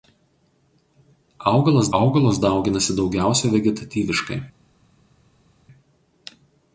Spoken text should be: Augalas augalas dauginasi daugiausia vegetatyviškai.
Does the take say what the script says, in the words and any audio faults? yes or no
yes